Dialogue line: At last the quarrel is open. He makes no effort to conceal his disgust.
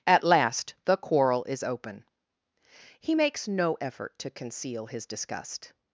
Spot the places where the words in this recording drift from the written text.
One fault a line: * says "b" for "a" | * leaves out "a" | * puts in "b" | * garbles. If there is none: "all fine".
all fine